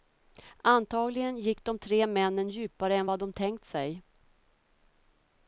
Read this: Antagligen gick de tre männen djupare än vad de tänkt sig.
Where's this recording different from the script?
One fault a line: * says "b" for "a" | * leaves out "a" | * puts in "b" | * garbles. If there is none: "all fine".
all fine